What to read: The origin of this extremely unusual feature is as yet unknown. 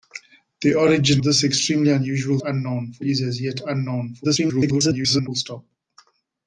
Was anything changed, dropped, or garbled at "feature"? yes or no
yes